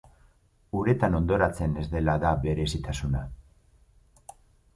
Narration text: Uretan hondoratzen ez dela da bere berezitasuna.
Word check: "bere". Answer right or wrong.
wrong